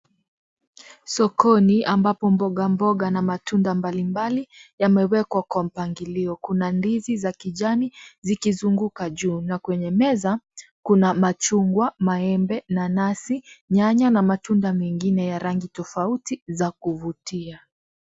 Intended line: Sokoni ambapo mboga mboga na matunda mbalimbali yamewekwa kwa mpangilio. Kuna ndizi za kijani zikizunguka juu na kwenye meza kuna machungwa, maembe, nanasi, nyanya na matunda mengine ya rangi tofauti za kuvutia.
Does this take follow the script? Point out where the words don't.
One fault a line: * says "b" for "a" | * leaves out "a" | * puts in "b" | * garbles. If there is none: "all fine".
all fine